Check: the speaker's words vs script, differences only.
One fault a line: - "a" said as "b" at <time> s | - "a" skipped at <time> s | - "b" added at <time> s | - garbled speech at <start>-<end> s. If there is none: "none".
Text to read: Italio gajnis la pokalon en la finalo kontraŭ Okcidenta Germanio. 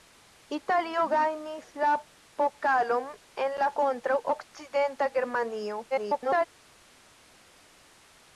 - "finalo" skipped at 3.7 s
- garbled speech at 5.9-6.5 s